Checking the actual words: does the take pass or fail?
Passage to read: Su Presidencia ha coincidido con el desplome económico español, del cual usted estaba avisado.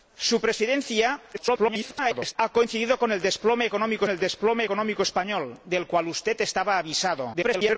fail